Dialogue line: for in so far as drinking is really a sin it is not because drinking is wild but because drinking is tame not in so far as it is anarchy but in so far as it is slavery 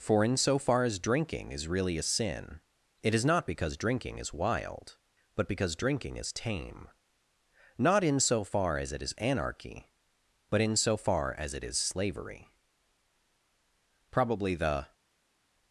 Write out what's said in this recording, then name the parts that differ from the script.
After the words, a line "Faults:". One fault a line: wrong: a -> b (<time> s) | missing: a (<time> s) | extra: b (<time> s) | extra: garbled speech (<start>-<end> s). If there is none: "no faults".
for in so far as drinking is really a sin it is not because drinking is wild but because drinking is tame not in so far as it is anarchy but in so far as it is slavery probably the
Faults:
extra: probably the (14.1 s)